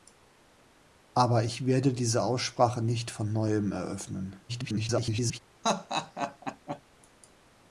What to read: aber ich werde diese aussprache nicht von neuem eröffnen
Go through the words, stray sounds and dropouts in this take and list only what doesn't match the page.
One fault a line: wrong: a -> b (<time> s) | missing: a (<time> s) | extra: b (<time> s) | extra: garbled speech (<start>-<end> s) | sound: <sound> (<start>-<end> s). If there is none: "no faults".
extra: garbled speech (4.5-5.4 s)
sound: laugh (5.6-6.8 s)